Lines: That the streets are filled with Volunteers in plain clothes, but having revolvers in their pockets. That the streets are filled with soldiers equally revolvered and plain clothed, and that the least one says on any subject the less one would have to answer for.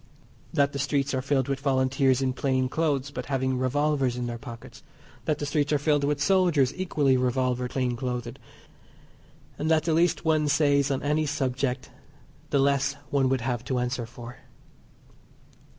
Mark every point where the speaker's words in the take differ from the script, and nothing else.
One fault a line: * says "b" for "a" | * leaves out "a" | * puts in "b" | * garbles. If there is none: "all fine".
* leaves out "and"